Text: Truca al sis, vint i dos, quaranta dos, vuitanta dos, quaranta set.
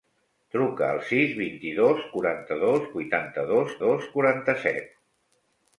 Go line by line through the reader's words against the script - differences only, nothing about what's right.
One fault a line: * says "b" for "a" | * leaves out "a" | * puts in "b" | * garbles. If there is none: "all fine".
* puts in "dos"